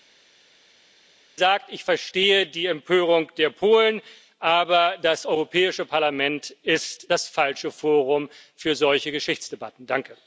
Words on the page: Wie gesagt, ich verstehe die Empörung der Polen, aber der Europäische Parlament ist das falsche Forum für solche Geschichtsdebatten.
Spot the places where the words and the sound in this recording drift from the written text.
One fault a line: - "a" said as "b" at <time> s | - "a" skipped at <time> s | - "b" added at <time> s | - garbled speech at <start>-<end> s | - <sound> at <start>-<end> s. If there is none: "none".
- "der" said as "das" at 5.0 s